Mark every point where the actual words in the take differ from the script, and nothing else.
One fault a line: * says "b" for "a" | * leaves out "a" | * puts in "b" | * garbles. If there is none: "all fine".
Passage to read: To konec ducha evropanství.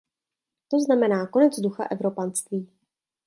* puts in "znamená"